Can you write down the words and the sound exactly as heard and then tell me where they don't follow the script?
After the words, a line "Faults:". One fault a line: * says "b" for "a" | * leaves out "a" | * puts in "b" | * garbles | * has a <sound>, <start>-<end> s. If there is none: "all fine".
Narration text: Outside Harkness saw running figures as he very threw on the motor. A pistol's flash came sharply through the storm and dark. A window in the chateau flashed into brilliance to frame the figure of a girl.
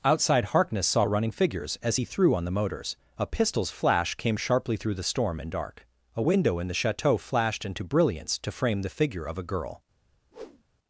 Outside Harkness saw running figures as he threw on the motors. A pistol's flash came sharply through the storm and dark. A window in the chateau flashed into brilliance to frame the figure of a girl.
Faults:
* leaves out "very"
* says "motors" for "motor"
* has a whoosh, 10.3-10.6 s